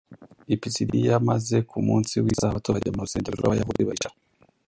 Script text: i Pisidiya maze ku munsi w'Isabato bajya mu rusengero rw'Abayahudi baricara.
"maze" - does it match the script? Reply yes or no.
yes